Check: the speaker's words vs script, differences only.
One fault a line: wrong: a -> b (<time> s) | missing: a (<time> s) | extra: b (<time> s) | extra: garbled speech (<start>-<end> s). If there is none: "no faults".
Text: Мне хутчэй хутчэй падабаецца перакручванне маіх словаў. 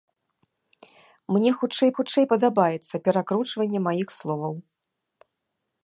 no faults